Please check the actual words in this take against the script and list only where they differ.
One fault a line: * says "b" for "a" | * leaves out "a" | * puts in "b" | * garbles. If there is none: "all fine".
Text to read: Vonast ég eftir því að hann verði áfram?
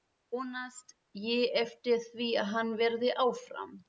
all fine